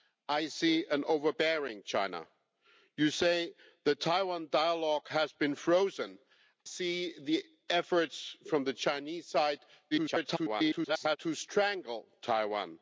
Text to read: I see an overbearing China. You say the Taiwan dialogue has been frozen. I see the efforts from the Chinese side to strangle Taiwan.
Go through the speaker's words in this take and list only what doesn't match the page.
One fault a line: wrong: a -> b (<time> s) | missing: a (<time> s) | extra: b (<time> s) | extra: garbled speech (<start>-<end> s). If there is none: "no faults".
missing: I (6.2 s)
extra: garbled speech (9.9-11.2 s)